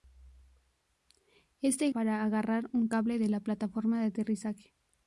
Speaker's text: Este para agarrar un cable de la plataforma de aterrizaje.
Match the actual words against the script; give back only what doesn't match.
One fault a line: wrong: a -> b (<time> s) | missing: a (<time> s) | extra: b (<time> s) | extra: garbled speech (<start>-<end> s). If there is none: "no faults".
no faults